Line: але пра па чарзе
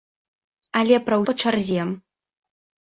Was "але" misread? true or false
false